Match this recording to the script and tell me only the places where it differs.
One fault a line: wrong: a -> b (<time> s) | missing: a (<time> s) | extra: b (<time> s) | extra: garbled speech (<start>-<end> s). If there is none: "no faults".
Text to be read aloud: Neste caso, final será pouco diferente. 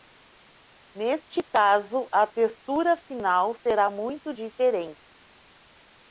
extra: a textura (2.1 s)
wrong: pouco -> muito (3.9 s)